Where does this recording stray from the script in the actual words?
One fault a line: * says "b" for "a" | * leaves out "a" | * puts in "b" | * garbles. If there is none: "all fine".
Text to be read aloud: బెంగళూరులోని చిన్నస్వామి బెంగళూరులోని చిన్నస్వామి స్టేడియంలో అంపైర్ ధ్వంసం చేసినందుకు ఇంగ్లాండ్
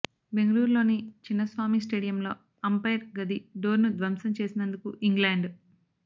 * says "స్టేడియంలో అంపైర్ గది డోర్ను" for "బెంగళూరులోని చిన్నస్వామి స్టేడియంలో అంపైర్"